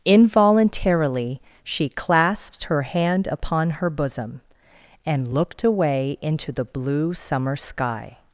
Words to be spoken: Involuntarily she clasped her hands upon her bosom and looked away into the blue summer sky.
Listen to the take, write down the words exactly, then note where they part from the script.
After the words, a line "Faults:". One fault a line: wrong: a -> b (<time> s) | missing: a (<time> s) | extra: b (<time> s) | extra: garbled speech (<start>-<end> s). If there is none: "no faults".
Involuntarily she clasped her hand upon her bosom and looked away into the blue summer sky.
Faults:
wrong: hands -> hand (2.8 s)